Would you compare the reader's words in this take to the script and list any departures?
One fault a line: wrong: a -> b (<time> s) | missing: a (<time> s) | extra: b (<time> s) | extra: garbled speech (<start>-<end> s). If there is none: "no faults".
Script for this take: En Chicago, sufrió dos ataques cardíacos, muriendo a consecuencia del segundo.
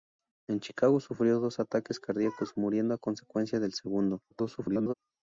extra: garbled speech (4.3-4.9 s)